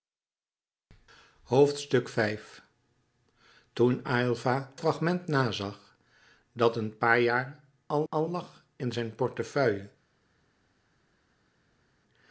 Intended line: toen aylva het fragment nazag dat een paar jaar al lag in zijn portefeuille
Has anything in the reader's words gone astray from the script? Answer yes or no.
yes